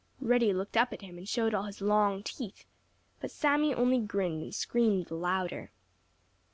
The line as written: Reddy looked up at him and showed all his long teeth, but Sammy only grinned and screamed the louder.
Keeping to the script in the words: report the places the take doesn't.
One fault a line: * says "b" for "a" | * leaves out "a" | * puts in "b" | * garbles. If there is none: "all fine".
all fine